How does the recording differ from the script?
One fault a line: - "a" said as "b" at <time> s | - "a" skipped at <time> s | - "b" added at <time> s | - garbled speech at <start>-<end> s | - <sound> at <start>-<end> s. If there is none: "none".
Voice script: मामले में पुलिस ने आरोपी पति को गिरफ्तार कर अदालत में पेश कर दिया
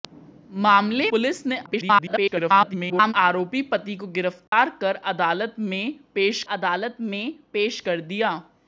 - "में" skipped at 1.1 s
- garbled speech at 1.7-3.1 s
- dropout at 4.5-4.5 s
- "अदालत में पेश" added at 6.5 s